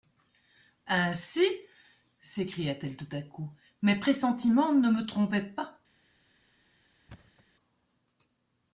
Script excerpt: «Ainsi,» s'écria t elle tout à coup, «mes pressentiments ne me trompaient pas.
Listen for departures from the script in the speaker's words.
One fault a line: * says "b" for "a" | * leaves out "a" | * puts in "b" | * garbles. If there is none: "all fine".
all fine